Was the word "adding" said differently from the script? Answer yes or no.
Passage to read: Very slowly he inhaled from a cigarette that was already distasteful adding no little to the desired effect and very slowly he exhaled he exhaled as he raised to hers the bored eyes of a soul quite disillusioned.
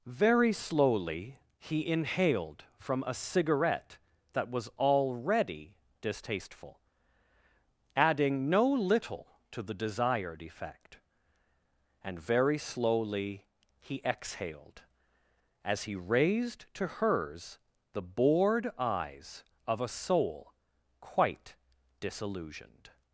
no